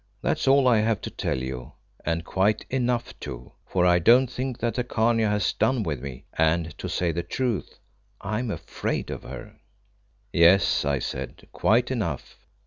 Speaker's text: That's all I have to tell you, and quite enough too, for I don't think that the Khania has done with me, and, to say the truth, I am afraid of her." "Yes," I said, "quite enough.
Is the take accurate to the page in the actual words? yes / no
yes